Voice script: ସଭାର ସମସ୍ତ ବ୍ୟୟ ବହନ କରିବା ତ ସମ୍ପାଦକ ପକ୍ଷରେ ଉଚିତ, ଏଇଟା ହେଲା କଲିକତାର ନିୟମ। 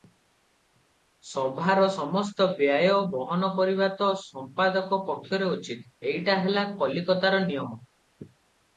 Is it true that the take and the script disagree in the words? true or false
false